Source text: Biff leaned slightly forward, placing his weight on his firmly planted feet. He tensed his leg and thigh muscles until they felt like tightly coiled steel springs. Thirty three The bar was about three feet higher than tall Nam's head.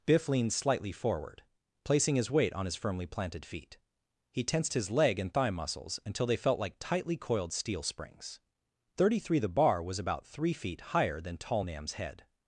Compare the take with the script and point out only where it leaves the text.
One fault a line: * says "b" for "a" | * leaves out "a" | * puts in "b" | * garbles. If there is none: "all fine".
all fine